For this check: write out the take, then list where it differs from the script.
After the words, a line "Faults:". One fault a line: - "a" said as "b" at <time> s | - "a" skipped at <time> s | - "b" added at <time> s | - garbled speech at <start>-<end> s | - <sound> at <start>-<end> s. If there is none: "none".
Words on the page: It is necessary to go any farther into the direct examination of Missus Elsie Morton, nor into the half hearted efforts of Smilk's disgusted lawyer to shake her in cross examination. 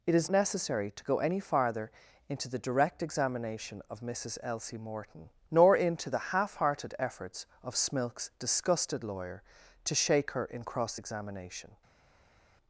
It is necessary to go any farther into the direct examination of Missus Elsie Morton, nor into the half hearted efforts of Smilk's disgusted lawyer to shake her in cross examination.
Faults:
none